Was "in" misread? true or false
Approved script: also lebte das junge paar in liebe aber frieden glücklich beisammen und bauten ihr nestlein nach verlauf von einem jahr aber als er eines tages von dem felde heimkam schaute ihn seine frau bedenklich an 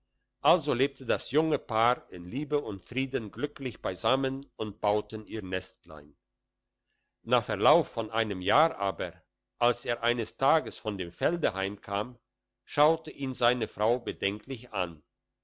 false